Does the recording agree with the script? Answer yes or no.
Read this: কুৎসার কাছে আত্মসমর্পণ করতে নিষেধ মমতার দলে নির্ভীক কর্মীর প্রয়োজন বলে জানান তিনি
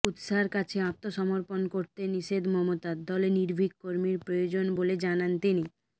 yes